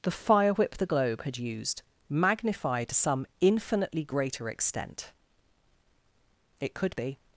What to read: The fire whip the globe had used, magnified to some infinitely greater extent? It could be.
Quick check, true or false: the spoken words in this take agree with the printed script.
true